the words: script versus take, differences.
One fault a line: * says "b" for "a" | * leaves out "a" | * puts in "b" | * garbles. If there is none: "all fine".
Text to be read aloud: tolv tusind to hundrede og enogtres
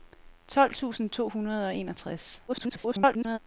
* garbles